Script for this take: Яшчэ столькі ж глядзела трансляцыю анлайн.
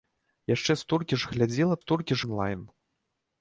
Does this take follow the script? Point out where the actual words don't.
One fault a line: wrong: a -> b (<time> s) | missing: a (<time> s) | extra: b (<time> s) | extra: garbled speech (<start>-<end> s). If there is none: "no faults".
wrong: трансляцыю -> столькі (1.8 s)